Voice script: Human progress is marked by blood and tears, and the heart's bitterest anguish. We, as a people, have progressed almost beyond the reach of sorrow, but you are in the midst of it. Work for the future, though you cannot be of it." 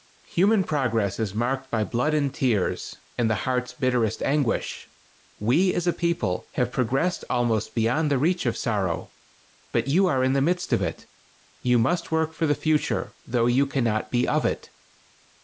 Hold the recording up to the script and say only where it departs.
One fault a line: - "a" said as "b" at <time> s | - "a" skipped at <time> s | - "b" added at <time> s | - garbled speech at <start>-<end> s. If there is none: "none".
- "You must" added at 11.6 s